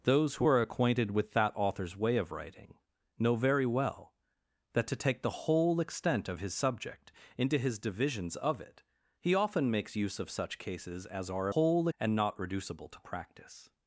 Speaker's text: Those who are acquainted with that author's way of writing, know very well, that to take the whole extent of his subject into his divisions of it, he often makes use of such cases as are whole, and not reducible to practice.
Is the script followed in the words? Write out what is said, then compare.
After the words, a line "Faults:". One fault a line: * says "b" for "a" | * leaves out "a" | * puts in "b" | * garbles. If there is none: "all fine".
Those who are acquainted with that author's way of writing, know very well, that to take the whole extent of his subject into his divisions of it, he often makes use of such cases as are whole, and not reducible to practice.
Faults:
all fine